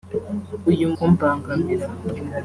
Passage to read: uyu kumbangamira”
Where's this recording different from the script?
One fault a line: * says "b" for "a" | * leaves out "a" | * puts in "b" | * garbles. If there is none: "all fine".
all fine